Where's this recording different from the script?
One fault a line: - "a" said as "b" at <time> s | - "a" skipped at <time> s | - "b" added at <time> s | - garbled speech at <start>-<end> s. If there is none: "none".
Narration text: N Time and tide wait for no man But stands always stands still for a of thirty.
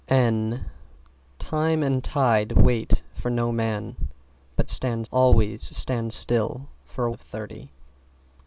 none